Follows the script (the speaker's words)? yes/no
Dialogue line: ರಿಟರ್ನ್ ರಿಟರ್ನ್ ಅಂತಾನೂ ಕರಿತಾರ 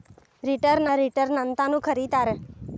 yes